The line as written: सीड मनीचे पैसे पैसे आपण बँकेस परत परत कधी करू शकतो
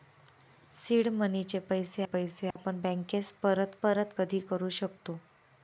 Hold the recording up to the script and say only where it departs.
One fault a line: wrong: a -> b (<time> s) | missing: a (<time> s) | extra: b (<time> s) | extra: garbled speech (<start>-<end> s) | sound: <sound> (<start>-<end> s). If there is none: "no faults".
sound: dropout (2.5-2.6 s)